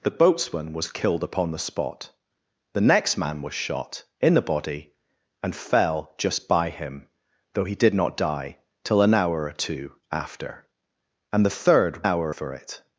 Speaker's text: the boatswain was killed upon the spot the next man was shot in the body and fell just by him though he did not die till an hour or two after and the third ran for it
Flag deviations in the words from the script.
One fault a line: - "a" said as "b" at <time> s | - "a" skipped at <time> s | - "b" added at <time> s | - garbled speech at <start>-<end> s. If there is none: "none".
- "ran" said as "hour" at 12.0 s